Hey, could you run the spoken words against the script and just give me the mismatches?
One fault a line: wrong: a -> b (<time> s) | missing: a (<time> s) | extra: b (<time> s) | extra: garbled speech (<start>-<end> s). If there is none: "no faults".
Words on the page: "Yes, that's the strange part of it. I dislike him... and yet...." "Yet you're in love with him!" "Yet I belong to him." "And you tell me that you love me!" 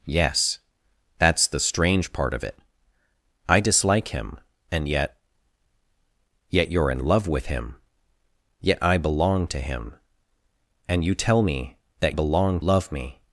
wrong: you -> belong (12.1 s)